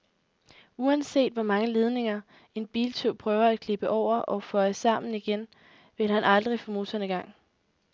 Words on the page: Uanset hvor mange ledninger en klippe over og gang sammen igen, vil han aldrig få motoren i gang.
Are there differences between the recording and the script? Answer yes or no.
yes